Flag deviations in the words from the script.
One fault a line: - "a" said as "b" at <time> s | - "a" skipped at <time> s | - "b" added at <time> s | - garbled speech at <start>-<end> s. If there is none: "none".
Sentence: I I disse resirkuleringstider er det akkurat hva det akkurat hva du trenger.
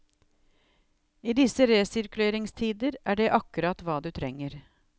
- "I" skipped at 1.3 s
- "det akkurat hva" skipped at 4.0 s